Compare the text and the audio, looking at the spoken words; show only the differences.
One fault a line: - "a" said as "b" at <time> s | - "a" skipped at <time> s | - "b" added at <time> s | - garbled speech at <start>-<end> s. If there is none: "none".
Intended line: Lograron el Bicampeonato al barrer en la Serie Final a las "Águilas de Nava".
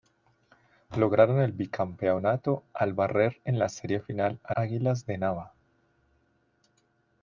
- "las" skipped at 4.6 s